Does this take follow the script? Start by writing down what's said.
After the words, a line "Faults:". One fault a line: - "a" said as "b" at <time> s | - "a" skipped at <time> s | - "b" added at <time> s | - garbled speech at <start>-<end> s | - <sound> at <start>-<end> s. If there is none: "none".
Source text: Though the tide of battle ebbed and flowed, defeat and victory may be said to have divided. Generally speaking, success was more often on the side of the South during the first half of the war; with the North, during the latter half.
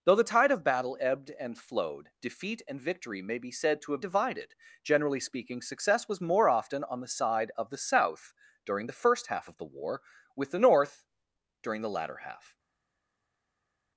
Though the tide of battle ebbed and flowed, defeat and victory may be said to have divided. Generally speaking, success was more often on the side of the South during the first half of the war; with the North, during the latter half.
Faults:
none